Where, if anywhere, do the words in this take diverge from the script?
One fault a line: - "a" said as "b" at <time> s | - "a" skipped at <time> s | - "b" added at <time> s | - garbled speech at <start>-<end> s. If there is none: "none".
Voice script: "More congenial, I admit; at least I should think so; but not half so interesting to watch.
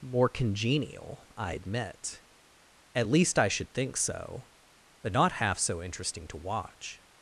none